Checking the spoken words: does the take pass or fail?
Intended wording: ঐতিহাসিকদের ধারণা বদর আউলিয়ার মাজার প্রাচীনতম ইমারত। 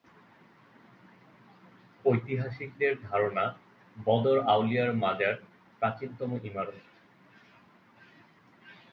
pass